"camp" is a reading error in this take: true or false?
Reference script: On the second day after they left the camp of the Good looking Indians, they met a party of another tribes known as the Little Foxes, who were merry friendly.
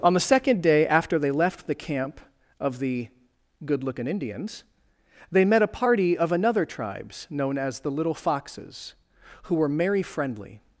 false